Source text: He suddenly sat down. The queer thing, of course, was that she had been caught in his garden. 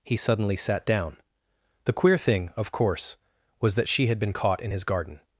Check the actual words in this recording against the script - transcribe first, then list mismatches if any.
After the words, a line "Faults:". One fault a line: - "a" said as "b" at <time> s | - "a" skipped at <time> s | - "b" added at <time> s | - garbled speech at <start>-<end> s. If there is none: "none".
He suddenly sat down. The queer thing, of course, was that she had been caught in his garden.
Faults:
none